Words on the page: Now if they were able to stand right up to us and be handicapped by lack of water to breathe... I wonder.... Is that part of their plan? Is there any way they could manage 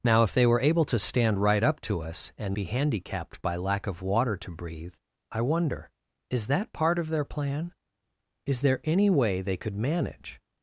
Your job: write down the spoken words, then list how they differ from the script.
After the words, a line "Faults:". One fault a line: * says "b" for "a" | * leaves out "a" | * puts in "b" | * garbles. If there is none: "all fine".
Now if they were able to stand right up to us and be handicapped by lack of water to breathe... I wonder.... Is that part of their plan? Is there any way they could manage
Faults:
all fine